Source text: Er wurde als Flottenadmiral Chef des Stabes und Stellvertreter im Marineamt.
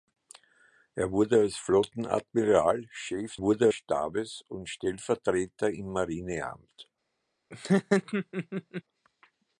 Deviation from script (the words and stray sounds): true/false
true